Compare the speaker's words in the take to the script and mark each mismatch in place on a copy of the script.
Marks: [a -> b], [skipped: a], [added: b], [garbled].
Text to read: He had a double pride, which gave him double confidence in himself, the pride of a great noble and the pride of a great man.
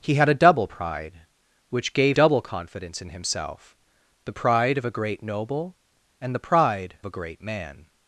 He had a double pride, which gave [skipped: him] double confidence in himself, the pride of a great noble and the pride [skipped: of] a great man.